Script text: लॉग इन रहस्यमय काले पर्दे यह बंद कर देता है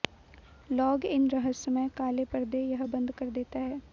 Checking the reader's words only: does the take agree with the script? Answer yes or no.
yes